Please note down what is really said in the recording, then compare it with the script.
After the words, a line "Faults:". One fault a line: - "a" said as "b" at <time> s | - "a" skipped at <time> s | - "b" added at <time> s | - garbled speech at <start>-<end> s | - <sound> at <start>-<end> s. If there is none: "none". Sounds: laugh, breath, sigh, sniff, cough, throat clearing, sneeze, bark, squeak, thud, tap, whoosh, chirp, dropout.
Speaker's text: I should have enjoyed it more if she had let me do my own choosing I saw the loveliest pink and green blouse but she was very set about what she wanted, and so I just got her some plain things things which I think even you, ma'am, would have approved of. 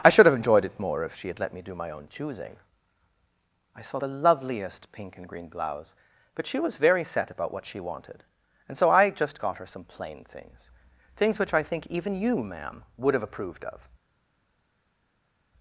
I should have enjoyed it more if she had let me do my own choosing I saw the loveliest pink and green blouse but she was very set about what she wanted, and so I just got her some plain things things which I think even you, ma'am, would have approved of.
Faults:
none